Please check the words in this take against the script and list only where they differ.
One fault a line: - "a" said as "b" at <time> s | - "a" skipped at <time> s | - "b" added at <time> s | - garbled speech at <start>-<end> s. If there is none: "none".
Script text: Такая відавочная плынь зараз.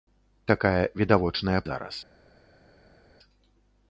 - "плынь" skipped at 1.6 s